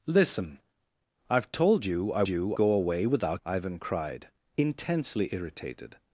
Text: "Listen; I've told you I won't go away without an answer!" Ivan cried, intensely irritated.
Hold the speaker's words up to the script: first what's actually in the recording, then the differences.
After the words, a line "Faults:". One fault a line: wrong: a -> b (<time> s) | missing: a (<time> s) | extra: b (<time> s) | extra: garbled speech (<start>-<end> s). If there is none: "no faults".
"Listen; I've told you I you go away without!" Ivan cried, intensely irritated.
Faults:
wrong: won't -> you (2.3 s)
missing: an answer (3.4 s)